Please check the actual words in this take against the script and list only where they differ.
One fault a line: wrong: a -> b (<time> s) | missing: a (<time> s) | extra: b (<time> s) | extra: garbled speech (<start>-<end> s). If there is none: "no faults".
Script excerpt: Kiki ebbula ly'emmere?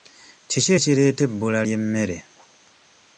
extra: ekireeta (0.8 s)